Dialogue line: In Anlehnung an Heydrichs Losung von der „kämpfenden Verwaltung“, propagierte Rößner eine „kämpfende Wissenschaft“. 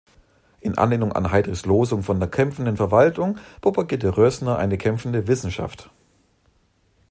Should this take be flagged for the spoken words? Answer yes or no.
no